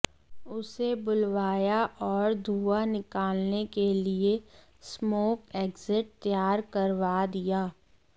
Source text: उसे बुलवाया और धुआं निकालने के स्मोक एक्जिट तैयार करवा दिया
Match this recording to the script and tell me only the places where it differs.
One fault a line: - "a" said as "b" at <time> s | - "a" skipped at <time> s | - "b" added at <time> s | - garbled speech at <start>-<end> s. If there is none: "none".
- "लिए" added at 3.9 s